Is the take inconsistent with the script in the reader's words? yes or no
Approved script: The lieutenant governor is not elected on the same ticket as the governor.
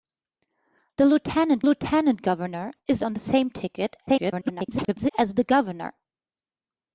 yes